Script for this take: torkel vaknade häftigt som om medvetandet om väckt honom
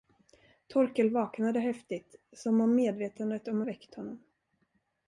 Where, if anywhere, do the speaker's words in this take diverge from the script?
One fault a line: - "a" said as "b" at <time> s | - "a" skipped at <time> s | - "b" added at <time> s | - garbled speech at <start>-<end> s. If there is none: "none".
none